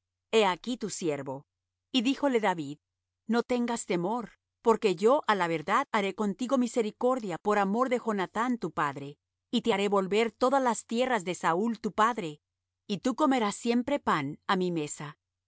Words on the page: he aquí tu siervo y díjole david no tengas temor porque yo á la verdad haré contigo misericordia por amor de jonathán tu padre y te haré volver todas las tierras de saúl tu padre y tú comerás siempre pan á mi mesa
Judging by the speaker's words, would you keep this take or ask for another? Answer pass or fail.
pass